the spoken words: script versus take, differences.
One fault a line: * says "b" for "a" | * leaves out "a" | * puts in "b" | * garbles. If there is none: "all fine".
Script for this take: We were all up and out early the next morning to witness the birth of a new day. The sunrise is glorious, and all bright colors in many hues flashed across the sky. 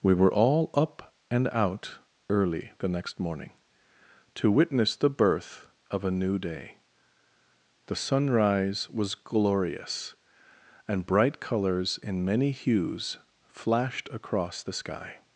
* says "was" for "is"
* leaves out "all"